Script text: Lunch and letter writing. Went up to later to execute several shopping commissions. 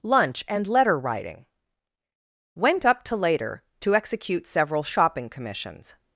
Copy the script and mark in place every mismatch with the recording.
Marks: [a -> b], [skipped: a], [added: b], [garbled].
Lunch and letter writing. Went up to later to execute several shopping commissions.